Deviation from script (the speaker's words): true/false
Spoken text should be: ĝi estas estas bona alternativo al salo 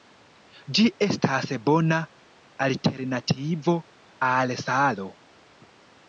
true